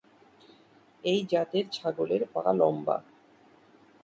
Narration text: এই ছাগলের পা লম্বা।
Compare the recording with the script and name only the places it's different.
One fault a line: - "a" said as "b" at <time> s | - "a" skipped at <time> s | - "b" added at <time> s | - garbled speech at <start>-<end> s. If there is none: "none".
- "জাতের" added at 1.3 s